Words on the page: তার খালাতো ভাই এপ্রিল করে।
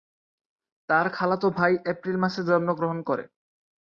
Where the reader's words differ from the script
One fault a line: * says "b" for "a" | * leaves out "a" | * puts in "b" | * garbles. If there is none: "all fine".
* puts in "মাসে জন্মগ্রহণ"